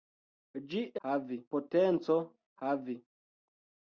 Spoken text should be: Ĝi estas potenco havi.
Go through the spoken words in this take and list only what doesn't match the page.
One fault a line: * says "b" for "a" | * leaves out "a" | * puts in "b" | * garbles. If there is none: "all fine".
* says "havi" for "estas"